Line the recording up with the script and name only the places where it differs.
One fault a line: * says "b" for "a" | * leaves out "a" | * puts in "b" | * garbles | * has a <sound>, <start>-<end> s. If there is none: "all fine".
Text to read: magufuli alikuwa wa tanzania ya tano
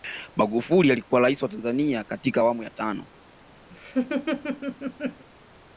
* puts in "rais"
* puts in "katika awamu"
* has a laugh, 3.7-5.3 s